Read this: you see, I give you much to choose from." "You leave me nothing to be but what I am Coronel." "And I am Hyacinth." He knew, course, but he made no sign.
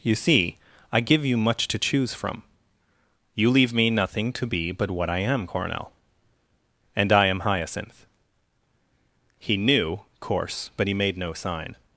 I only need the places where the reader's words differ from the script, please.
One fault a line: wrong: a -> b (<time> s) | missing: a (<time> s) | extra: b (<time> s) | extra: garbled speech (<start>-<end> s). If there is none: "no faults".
no faults